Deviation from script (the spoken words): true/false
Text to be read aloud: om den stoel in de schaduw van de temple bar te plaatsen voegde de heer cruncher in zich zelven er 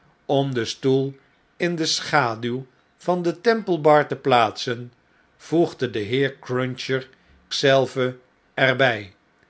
true